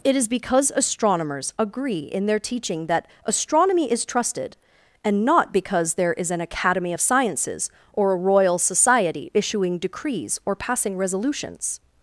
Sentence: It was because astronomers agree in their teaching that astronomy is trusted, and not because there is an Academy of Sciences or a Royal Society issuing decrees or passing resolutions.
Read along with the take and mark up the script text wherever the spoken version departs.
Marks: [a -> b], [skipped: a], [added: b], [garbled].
It [was -> is] because astronomers agree in their teaching that astronomy is trusted, and not because there is an Academy of Sciences or a Royal Society issuing decrees or passing resolutions.